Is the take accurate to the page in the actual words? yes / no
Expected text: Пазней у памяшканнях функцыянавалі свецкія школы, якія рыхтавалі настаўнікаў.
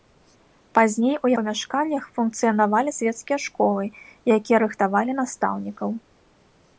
yes